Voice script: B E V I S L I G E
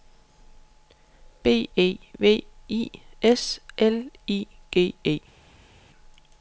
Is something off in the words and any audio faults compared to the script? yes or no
no